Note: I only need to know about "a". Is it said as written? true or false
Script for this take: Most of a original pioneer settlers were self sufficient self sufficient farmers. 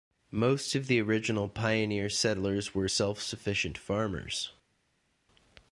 false